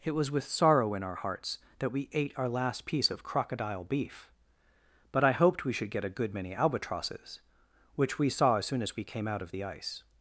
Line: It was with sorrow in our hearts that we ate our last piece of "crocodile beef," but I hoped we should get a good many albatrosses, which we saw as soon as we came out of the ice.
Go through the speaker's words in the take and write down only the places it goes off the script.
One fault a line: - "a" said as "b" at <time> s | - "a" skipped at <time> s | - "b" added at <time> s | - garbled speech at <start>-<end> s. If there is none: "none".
none